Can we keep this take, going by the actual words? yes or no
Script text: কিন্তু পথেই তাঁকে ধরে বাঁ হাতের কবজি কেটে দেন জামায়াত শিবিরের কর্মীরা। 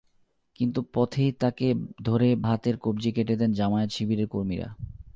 no